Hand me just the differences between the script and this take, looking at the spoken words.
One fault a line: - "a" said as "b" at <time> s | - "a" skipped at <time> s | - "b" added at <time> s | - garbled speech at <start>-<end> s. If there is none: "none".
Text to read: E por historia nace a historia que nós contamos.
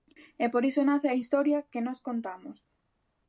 - "historia" said as "iso" at 0.7 s